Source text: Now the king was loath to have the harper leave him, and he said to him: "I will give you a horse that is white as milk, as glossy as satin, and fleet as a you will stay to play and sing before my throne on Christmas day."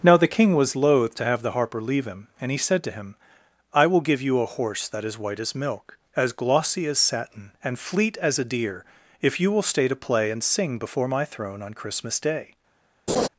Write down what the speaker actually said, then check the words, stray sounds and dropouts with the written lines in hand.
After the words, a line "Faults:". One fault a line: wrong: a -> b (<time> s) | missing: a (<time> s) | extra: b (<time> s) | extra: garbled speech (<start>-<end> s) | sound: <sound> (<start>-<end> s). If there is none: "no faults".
Now the king was loath to have the harper leave him, and he said to him: "I will give you a horse that is white as milk, as glossy as satin, and fleet as a deer, if you will stay to play and sing before my throne on Christmas day."
Faults:
extra: deer if (8.4 s)
sound: laugh (13.1-13.3 s)